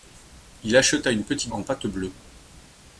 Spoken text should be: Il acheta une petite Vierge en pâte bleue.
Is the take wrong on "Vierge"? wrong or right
wrong